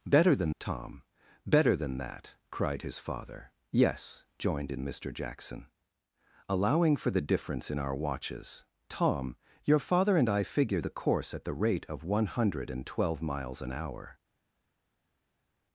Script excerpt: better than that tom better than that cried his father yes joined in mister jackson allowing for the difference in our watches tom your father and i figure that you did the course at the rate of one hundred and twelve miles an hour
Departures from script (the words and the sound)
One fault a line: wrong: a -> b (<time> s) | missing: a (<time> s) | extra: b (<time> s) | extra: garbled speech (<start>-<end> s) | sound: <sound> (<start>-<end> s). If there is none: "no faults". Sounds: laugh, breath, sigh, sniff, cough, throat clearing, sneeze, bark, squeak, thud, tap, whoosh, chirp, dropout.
missing: that (0.6 s)
missing: that you did (10.8 s)